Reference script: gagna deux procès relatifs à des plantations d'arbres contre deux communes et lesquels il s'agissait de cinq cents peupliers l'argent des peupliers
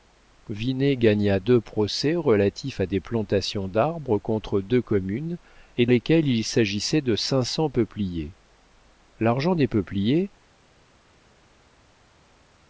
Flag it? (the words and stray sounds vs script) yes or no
no